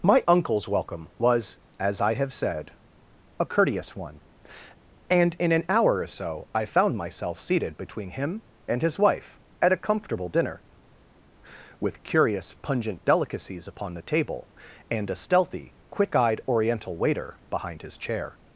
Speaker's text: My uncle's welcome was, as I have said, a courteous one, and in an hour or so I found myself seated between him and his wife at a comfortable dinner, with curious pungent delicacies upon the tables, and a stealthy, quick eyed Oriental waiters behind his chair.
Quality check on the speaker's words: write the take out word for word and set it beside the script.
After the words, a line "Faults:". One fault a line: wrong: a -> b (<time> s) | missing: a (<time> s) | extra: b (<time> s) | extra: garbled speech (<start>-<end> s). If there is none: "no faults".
My uncle's welcome was, as I have said, a courteous one, and in an hour or so I found myself seated between him and his wife at a comfortable dinner, with curious pungent delicacies upon the table, and a stealthy, quick eyed Oriental waiter behind his chair.
Faults:
wrong: tables -> table (14.0 s)
wrong: waiters -> waiter (17.0 s)